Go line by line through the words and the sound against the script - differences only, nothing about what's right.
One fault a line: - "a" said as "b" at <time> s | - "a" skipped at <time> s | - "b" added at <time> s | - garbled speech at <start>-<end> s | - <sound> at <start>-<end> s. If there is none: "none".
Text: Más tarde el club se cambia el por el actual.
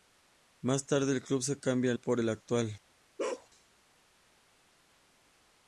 - bark at 3.2-3.5 s